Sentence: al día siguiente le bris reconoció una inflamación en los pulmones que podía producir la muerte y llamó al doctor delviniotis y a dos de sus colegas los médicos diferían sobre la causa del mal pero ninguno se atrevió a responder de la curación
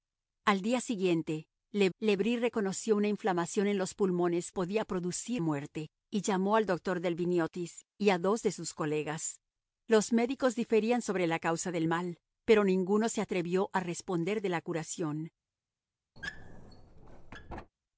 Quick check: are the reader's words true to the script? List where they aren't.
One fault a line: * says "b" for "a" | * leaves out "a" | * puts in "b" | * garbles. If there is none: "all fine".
* puts in "le"
* leaves out "que"
* leaves out "la"